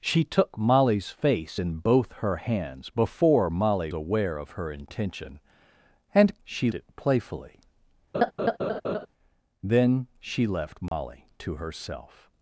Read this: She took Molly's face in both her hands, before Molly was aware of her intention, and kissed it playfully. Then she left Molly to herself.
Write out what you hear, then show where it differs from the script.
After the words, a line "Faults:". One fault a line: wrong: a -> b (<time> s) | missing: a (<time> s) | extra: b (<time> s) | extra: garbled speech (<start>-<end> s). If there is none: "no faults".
She took Molly's face in both her hands, before Molly aware of her intention, and she it playfully. Then she left Molly to herself.
Faults:
missing: was (3.9 s)
wrong: kissed -> she (6.4 s)